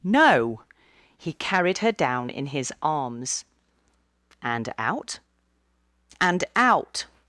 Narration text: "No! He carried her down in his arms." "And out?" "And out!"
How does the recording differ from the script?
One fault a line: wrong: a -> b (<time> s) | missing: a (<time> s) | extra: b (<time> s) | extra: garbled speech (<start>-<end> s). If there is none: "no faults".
no faults